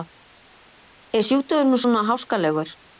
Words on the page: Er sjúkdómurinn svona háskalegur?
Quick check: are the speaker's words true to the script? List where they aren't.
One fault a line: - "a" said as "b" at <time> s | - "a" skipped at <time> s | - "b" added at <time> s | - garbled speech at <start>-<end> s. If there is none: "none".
none